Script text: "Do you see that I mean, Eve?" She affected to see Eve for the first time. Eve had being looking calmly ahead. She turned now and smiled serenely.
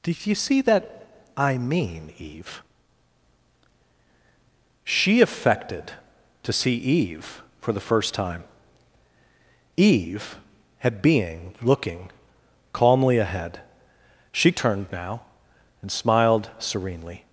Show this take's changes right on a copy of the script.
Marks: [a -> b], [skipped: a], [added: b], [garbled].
"Do you see that I mean, Eve?" She affected to see Eve for the first time. Eve had being looking calmly ahead. She turned now and smiled serenely.